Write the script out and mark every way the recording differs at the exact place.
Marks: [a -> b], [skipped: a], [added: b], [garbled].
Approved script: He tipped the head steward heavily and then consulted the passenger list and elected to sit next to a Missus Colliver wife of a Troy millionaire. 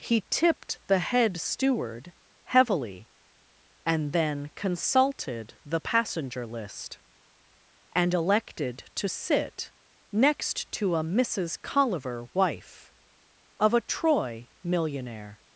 He tipped the head steward heavily and then consulted the passenger list and elected to sit next to a Missus Colliver wife of a Troy millionaire.